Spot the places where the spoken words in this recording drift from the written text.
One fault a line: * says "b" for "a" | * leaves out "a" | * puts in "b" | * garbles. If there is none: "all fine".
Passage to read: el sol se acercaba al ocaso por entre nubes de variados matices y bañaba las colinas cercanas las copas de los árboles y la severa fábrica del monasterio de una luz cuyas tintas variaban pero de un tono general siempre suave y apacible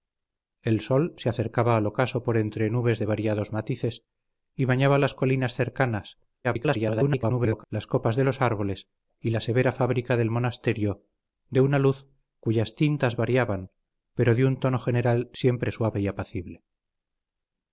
* garbles